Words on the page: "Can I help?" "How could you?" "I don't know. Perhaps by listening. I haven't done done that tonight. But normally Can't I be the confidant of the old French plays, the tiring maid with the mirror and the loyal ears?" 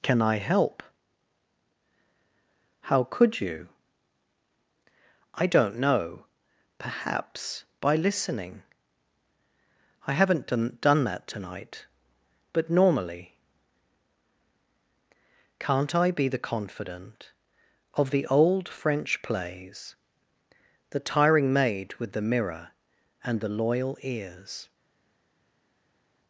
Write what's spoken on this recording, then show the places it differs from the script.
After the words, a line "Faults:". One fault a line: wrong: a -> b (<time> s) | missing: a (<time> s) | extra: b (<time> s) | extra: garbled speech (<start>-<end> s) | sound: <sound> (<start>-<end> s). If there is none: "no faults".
"Can I help?" "How could you?" "I don't know. Perhaps by listening. I haven't done done that tonight. But normally Can't I be the confidant of the old French plays, the tiring maid with the mirror and the loyal ears?"
Faults:
no faults